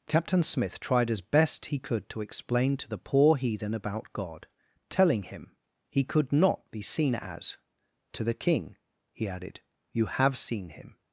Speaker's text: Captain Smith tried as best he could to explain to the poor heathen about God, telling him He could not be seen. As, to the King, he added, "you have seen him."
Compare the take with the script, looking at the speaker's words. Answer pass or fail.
pass